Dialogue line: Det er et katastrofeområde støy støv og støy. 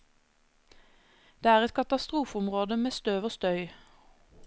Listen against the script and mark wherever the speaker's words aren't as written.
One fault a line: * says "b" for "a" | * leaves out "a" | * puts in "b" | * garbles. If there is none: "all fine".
* says "med" for "støy"